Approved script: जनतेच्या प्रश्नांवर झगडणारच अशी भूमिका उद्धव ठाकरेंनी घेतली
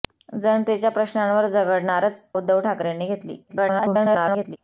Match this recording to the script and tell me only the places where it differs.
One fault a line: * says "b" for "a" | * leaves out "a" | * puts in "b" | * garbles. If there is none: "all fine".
* leaves out "अशी भूमिका"
* garbles